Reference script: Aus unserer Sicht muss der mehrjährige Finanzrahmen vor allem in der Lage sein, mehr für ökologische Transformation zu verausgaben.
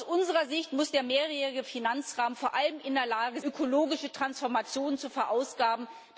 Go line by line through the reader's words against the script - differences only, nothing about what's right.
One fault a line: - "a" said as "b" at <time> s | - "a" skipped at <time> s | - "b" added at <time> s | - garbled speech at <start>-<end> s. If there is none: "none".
- "sein mehr für" skipped at 3.4 s